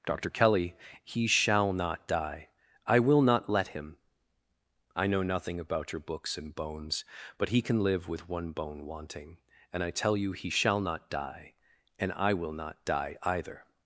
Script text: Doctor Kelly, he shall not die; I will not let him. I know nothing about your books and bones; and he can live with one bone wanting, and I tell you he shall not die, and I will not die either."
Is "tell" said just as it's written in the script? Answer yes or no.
yes